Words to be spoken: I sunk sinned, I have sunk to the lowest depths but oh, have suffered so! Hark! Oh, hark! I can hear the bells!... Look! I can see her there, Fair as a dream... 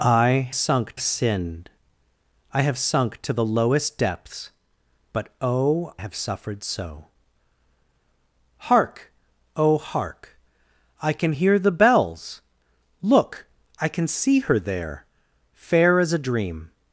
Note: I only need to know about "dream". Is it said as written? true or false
true